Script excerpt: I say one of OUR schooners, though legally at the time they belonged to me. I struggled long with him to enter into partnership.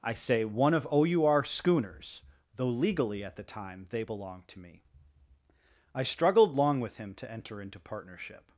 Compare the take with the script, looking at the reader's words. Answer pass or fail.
pass